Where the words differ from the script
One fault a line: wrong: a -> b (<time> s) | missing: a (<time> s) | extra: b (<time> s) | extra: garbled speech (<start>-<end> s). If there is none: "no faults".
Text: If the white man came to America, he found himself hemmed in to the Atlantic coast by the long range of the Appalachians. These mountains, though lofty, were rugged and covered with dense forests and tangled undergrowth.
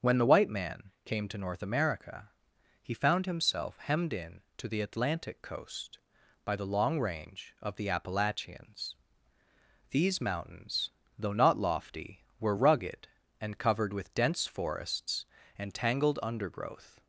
wrong: If -> When (0.0 s)
extra: North (1.4 s)
extra: not (11.3 s)